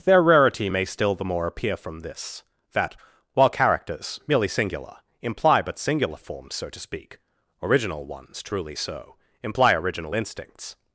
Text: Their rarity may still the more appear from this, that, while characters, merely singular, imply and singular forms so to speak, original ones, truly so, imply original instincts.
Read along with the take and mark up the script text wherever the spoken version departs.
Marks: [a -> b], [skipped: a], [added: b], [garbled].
Their rarity may still the more appear from this, that, while characters, merely singular, imply [and -> but] singular forms so to speak, original ones, truly so, imply original instincts.